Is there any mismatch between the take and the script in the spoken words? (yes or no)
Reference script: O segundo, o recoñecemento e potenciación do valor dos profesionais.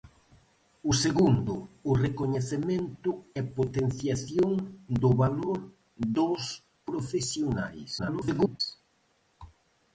yes